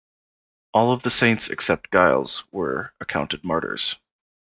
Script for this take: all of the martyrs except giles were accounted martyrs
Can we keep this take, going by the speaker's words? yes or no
no